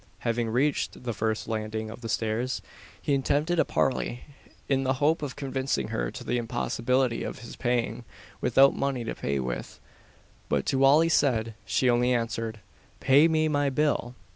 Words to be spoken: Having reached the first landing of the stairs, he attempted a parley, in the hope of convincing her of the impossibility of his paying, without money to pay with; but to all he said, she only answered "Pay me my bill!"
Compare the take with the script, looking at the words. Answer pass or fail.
pass